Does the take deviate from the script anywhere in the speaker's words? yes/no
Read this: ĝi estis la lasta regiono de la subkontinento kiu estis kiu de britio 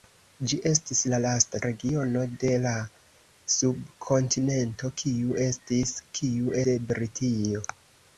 no